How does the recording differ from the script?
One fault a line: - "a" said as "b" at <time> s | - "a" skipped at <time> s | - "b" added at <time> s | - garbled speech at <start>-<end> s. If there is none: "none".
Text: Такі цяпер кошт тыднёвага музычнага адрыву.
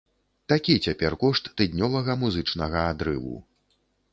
none